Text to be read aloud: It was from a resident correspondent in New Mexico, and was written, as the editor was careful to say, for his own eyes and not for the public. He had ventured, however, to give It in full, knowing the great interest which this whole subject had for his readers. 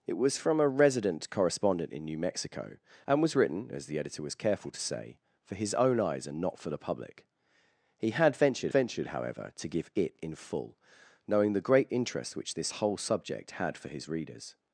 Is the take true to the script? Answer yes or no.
no